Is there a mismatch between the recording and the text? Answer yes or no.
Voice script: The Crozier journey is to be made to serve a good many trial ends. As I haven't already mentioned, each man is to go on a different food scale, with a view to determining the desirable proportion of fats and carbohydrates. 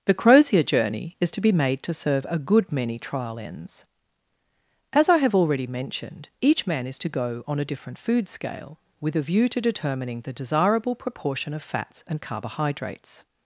yes